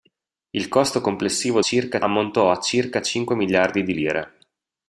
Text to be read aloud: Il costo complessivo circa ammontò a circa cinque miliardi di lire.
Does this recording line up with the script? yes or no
yes